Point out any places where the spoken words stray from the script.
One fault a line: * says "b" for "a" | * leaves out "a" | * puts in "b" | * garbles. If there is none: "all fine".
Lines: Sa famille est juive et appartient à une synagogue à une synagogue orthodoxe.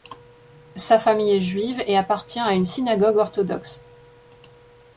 * leaves out "à une synagogue"